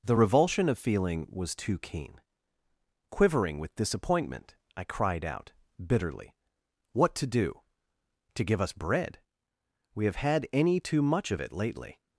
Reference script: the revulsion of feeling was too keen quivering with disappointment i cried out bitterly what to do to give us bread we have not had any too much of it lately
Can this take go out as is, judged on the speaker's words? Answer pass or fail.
fail